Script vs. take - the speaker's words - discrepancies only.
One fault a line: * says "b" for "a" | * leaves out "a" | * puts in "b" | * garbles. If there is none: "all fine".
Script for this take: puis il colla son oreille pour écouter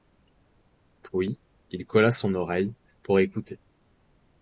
all fine